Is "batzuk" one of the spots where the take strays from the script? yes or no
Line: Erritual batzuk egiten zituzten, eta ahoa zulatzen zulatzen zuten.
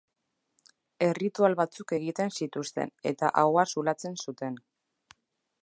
no